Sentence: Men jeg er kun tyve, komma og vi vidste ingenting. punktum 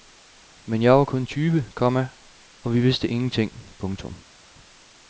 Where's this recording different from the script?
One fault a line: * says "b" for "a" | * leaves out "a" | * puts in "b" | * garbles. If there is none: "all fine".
* says "var" for "er"